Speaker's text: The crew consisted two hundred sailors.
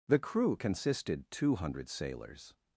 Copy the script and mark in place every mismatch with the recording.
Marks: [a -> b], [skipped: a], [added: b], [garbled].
The crew consisted two hundred sailors.